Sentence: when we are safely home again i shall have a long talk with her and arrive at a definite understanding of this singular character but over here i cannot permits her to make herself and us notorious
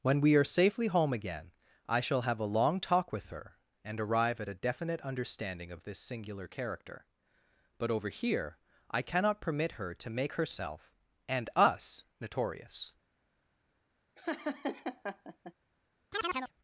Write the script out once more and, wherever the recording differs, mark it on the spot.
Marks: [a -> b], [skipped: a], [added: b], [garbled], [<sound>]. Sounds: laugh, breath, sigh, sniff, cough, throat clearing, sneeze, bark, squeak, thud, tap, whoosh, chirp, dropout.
when we are safely home again i shall have a long talk with her and arrive at a definite understanding of this singular character but over here i cannot [permits -> permit] her to make herself and us notorious [laugh] [chirp]